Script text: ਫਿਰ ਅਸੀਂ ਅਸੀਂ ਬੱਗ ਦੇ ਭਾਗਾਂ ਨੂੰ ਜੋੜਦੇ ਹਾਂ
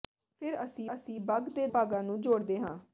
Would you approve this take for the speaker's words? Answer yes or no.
yes